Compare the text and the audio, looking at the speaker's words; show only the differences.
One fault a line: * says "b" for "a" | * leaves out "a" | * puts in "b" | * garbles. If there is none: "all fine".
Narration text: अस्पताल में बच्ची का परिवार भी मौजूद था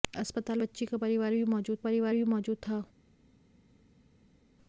* leaves out "में"
* puts in "परिवार भी मौजूद"